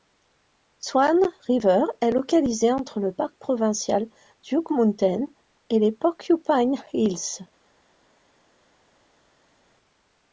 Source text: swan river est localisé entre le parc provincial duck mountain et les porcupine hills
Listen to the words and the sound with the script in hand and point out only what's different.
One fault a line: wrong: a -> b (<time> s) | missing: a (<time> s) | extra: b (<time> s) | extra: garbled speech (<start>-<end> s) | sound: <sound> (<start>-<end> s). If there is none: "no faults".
no faults